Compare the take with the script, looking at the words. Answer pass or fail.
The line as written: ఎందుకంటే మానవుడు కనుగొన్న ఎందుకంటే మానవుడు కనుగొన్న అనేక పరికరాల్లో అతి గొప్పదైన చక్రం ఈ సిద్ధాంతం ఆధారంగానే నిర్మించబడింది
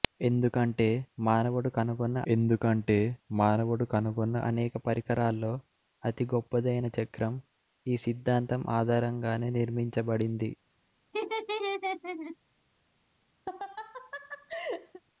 pass